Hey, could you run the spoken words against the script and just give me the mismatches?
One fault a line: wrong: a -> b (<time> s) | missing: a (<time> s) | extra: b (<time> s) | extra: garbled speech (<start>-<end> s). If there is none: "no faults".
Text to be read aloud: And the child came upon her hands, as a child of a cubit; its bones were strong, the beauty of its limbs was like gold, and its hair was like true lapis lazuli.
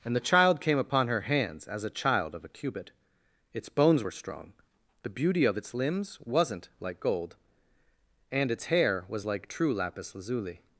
wrong: was -> wasn't (6.2 s)